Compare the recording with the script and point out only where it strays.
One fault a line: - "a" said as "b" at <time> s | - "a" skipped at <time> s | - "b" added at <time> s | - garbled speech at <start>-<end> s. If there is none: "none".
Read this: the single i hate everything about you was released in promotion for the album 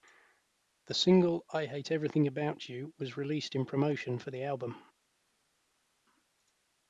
none